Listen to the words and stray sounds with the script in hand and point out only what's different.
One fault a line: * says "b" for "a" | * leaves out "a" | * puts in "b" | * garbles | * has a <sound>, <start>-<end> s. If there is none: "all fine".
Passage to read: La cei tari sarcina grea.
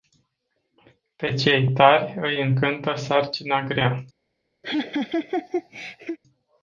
* says "Pe" for "La"
* puts in "îi încântă"
* has a laugh, 4.6-6.2 s